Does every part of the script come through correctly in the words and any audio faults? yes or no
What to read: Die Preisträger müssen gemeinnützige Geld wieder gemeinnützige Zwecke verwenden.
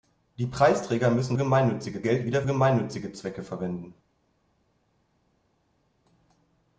yes